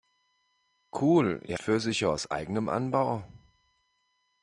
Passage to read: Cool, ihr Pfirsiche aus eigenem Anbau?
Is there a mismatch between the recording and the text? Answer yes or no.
no